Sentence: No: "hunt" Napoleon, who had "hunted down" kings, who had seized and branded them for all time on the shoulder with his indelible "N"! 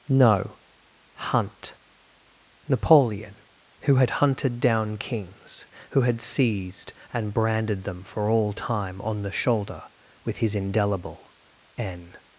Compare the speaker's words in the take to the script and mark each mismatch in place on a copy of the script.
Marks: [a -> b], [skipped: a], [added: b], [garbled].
No: "hunt" Napoleon, who had "hunted down" kings, who had seized and branded them for all time on the shoulder with his indelible "N"!